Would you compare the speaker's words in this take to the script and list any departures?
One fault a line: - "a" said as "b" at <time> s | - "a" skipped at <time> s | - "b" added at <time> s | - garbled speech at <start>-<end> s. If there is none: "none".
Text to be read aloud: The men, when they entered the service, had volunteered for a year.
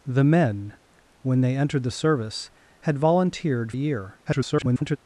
- "for" skipped at 3.7 s
- garbled speech at 4.2-5.0 s